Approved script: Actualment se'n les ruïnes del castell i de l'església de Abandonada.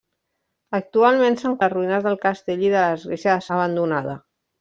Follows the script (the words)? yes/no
yes